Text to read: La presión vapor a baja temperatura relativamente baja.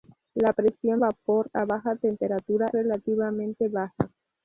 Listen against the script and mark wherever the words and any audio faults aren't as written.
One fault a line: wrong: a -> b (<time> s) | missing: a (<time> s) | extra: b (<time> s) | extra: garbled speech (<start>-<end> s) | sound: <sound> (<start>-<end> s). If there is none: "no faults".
no faults